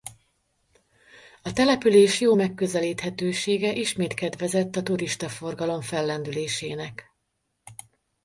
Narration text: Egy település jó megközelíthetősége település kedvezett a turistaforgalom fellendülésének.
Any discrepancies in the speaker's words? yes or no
yes